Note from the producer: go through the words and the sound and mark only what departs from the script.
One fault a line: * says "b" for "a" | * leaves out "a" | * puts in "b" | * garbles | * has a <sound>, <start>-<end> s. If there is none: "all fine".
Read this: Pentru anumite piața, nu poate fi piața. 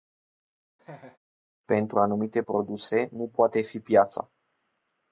* has a laugh, 0.8-1.2 s
* says "produse" for "piața"